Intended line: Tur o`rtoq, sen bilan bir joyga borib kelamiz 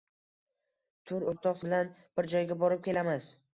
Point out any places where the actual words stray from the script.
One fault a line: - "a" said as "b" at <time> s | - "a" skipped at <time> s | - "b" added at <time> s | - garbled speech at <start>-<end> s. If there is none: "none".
- "sen" skipped at 1.6 s